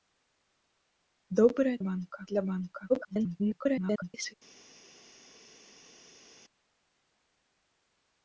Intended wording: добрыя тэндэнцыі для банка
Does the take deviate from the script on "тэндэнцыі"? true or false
true